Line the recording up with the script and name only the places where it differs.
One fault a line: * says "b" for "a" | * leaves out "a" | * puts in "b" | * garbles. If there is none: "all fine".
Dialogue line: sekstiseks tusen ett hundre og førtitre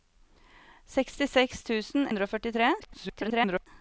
* leaves out "ett"
* garbles